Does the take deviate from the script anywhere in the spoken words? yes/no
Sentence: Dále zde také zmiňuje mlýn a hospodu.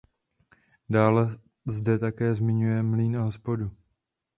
no